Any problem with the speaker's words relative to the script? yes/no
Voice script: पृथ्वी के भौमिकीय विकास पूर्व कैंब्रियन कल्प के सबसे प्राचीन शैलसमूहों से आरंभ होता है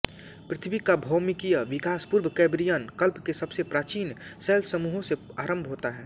yes